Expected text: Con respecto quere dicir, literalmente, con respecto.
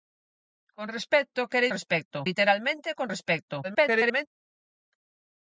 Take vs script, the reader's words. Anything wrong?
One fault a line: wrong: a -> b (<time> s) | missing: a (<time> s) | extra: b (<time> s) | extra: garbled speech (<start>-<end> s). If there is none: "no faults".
wrong: dicir -> respecto (1.7 s)
extra: garbled speech (3.6-4.3 s)